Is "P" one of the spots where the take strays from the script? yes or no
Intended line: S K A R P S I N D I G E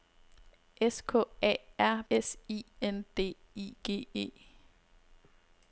yes